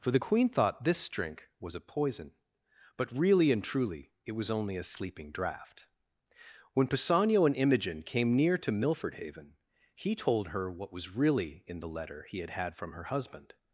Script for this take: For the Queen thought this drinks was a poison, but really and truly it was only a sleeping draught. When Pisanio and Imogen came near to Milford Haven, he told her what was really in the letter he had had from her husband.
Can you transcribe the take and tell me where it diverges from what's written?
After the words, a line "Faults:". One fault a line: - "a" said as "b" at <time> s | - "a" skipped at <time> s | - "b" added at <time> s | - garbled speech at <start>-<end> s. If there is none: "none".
For the Queen thought this drink was a poison, but really and truly it was only a sleeping draught. When Pisanio and Imogen came near to Milford Haven, he told her what was really in the letter he had had from her husband.
Faults:
- "drinks" said as "drink" at 1.1 s